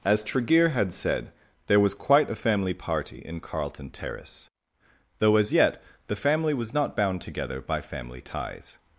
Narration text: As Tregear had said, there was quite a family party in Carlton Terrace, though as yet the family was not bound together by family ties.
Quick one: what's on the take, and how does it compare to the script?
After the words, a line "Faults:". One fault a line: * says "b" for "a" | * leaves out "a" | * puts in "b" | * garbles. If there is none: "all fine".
As Tregear had said, there was quite a family party in Carlton Terrace, though as yet the family was not bound together by family ties.
Faults:
all fine